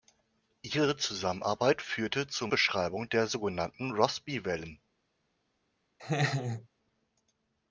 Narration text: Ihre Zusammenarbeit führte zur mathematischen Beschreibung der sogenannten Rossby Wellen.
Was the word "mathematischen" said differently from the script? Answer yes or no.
yes